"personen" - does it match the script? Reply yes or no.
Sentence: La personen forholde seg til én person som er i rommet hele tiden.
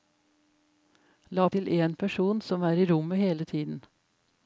no